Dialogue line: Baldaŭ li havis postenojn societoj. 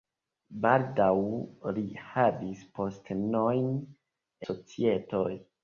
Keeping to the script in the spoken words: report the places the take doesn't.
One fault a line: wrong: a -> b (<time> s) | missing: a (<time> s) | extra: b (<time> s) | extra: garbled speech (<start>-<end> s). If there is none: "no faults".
no faults